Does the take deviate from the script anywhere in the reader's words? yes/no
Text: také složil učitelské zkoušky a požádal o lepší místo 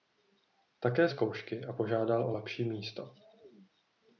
yes